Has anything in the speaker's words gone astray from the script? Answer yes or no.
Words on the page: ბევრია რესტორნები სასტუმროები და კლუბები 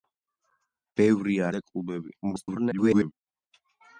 yes